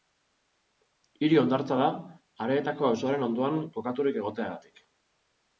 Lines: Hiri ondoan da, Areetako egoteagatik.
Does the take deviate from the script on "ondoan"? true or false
true